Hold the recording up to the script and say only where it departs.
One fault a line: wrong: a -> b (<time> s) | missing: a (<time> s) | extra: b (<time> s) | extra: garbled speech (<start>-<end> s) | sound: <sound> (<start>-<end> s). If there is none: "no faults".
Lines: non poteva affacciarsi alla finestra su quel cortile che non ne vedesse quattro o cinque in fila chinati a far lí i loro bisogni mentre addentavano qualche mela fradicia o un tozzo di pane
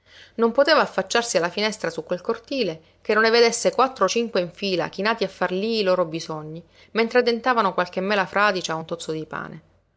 no faults